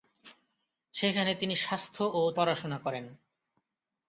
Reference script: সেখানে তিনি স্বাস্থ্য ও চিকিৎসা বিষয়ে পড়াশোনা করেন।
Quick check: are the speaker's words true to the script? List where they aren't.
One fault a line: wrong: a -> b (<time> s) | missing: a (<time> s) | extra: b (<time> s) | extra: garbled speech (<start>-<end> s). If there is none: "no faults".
missing: চিকিৎসা বিষয়ে (2.2 s)